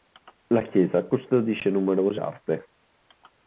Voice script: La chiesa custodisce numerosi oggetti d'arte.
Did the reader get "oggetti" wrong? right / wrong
wrong